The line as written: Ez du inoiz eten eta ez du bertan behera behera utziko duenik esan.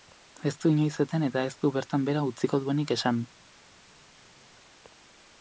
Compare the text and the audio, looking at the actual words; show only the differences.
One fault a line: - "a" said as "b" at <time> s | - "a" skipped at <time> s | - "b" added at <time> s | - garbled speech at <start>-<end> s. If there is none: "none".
- "behera" skipped at 2.2 s